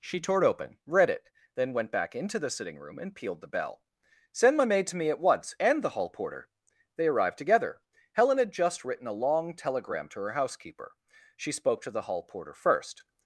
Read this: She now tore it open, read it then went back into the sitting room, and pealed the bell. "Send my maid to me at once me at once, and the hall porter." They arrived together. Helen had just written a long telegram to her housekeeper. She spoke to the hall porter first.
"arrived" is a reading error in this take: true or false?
false